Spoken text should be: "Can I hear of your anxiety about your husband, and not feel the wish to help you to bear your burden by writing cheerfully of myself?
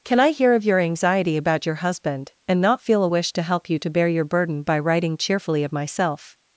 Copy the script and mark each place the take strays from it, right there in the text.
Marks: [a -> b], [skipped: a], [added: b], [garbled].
"Can I hear of your anxiety about your husband, and not feel [the -> a] wish to help you to bear your burden by writing cheerfully of myself?